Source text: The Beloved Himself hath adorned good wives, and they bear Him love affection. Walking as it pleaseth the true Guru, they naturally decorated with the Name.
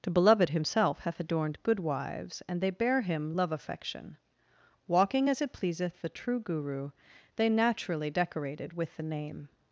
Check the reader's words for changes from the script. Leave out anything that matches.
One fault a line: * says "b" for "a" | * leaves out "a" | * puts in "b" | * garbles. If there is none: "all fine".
all fine